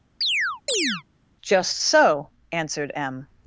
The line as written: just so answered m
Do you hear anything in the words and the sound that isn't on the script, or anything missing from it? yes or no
yes